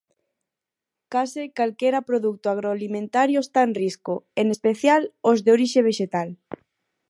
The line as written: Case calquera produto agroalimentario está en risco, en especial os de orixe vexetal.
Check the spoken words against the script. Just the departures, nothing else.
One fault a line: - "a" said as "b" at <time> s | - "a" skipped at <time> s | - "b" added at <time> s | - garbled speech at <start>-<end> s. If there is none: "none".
none